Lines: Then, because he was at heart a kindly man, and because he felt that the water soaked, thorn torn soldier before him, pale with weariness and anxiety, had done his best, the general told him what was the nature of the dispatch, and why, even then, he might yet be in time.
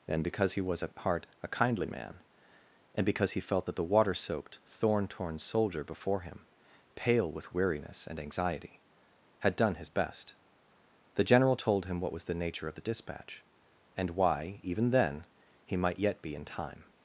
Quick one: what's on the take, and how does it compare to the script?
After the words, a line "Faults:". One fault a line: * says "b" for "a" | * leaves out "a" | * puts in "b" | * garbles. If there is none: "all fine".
And, because he was at heart a kindly man, and because he felt that the water soaked, thorn torn soldier before him, pale with weariness and anxiety, had done his best, the general told him what was the nature of the dispatch, and why, even then, he might yet be in time.
Faults:
* says "And" for "Then"